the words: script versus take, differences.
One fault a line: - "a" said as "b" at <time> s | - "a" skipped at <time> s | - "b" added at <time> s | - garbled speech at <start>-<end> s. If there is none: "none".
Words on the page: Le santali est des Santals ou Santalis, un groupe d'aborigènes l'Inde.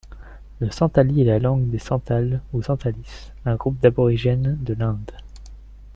- "la langue" added at 1.2 s
- "de" added at 4.6 s